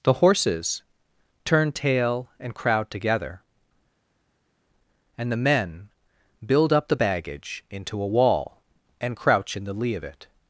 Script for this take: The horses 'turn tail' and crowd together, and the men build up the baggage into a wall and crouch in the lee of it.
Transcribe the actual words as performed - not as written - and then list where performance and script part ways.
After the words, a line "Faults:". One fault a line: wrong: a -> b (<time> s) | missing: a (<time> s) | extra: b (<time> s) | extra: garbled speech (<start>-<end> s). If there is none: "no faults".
The horses 'turn tail' and crowd together, and the men build up the baggage into a wall and crouch in the lee of it.
Faults:
no faults